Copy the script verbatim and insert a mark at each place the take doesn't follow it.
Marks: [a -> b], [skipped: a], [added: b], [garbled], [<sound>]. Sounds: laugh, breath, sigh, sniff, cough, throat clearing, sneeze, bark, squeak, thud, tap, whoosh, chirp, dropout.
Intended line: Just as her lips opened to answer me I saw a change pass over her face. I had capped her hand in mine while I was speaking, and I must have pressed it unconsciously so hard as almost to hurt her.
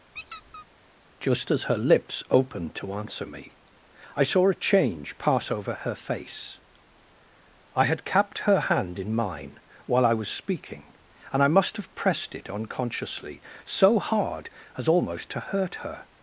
[squeak] Just as her lips opened to answer me I saw a change pass over her face. I had capped her hand in mine while I was speaking, and I must have pressed it unconsciously so hard as almost to hurt her.